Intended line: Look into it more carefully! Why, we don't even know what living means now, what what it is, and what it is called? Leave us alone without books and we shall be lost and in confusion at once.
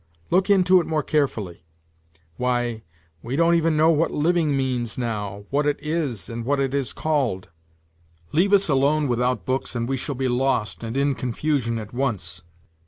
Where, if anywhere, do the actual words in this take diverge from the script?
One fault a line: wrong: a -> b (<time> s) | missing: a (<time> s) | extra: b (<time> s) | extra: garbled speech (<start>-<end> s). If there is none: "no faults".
missing: what (5.7 s)